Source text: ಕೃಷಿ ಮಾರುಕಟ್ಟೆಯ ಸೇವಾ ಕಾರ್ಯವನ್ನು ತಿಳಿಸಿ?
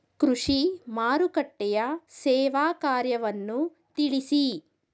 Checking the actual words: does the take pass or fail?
pass